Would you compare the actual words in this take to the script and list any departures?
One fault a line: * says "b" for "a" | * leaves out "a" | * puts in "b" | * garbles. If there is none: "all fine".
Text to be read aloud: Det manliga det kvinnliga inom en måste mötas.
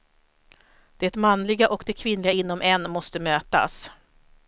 * puts in "och"